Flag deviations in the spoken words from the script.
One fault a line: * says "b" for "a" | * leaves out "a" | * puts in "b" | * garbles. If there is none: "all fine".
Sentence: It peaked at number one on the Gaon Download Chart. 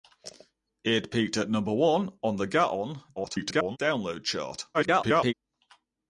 * garbles
* garbles